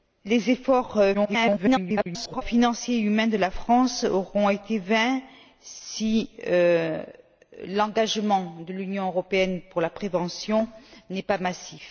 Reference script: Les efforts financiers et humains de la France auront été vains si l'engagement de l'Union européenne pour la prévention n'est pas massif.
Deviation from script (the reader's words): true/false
true